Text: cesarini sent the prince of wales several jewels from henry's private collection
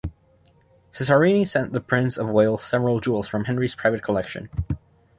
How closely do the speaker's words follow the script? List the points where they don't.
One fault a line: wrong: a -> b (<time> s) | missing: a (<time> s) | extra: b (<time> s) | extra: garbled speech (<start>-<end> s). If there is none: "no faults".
no faults